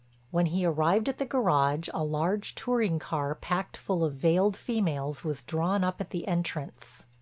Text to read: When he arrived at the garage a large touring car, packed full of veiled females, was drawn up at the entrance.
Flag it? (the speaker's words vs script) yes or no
no